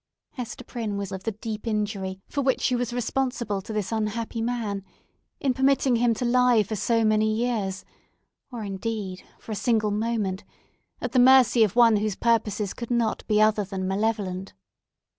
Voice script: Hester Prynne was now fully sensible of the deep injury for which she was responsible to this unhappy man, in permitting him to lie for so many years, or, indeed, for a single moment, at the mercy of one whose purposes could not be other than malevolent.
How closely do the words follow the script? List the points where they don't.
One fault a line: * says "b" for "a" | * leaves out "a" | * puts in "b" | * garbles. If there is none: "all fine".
* leaves out "now fully sensible"